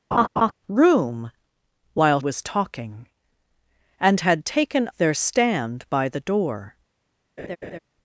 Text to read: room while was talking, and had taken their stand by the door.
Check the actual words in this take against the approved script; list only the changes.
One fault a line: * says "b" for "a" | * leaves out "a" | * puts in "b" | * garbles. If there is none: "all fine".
all fine